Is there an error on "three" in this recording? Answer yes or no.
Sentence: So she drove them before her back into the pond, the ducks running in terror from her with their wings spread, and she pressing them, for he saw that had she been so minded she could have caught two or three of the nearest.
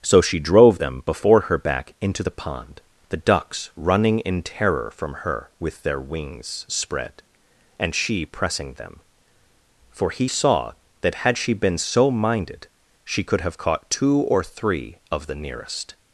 no